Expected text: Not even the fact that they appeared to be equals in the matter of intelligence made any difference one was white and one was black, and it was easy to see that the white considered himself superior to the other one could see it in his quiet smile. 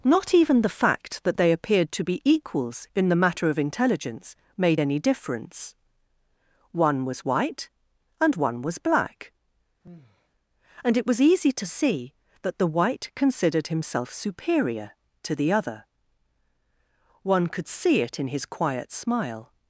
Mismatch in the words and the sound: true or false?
true